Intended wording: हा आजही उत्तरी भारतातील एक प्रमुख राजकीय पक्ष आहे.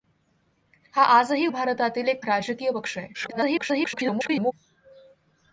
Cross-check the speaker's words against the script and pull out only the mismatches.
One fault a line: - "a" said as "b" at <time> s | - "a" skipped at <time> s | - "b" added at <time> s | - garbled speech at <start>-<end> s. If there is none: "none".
- "उत्तरी" skipped at 1.5 s
- "प्रमुख" skipped at 2.2 s
- garbled speech at 3.1-4.5 s